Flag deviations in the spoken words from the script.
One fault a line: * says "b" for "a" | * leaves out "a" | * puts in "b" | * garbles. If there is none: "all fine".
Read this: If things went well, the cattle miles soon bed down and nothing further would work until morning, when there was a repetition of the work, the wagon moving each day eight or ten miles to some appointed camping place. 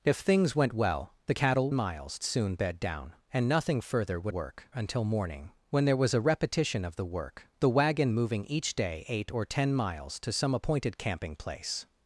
all fine